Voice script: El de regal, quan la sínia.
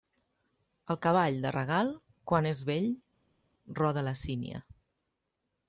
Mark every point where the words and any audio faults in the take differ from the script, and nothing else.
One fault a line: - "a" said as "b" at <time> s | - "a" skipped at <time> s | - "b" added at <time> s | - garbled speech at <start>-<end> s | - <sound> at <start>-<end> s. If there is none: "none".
- "cavall" added at 1.1 s
- "és vell roda" added at 2.5 s